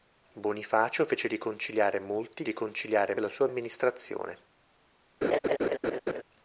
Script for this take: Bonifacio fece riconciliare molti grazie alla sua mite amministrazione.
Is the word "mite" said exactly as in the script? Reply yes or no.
no